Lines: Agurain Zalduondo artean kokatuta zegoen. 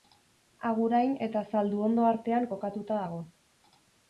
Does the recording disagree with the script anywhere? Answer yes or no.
yes